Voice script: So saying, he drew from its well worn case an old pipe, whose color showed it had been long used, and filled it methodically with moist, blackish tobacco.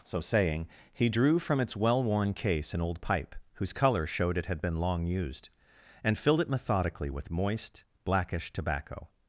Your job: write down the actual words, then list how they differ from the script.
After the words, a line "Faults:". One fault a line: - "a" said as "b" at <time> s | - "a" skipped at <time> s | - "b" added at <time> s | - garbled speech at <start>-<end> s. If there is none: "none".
So saying, he drew from its well worn case an old pipe, whose color showed it had been long used, and filled it methodically with moist, blackish tobacco.
Faults:
none